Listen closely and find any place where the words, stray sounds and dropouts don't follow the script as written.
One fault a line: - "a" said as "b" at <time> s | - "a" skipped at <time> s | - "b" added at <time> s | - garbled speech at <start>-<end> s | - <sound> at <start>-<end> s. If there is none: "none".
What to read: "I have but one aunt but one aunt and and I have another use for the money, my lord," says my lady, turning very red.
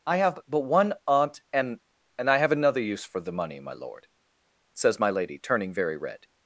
- "but one aunt" skipped at 1.4 s